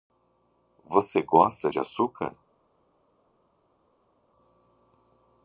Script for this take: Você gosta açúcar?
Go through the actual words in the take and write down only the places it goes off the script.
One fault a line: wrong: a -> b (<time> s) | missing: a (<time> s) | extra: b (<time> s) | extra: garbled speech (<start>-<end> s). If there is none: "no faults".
extra: de (1.7 s)